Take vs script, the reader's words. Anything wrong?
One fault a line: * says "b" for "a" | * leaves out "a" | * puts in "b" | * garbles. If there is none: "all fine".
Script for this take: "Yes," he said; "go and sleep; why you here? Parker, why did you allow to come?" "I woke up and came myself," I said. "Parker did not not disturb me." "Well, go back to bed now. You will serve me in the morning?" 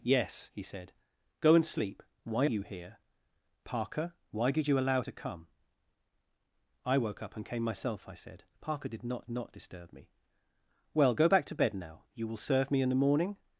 all fine